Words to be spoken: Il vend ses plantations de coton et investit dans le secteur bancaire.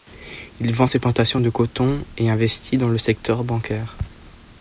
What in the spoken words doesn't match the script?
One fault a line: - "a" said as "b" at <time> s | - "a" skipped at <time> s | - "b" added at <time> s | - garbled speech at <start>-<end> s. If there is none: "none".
none